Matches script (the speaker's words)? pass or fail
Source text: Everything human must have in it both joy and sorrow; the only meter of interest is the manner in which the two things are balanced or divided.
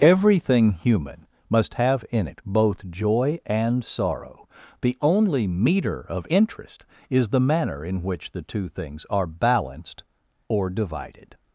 pass